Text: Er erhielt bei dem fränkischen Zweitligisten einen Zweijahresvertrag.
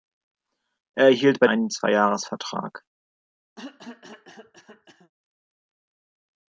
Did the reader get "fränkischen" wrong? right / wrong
wrong